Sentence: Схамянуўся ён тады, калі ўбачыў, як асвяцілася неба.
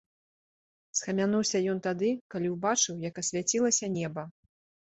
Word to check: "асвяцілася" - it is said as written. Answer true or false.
true